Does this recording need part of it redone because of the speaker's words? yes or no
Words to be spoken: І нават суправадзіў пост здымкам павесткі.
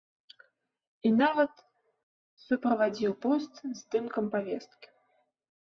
no